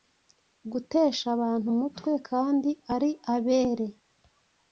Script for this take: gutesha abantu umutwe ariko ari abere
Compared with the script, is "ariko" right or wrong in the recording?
wrong